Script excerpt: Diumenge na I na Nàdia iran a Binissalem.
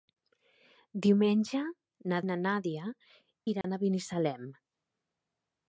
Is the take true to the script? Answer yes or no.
yes